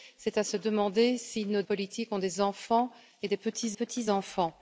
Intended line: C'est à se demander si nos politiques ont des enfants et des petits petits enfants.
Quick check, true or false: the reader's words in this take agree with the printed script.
true